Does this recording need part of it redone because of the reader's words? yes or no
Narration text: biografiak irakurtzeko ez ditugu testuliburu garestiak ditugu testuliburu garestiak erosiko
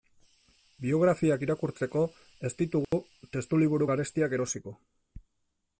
yes